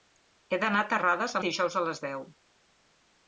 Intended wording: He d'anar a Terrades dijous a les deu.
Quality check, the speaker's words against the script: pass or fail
pass